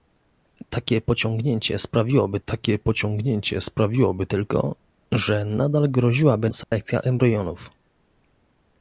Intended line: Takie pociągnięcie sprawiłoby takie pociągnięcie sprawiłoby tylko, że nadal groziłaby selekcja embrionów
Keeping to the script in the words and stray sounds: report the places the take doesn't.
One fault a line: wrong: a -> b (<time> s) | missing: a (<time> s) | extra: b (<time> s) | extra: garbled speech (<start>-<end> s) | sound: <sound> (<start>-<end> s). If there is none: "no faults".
sound: dropout (6.6-6.7 s)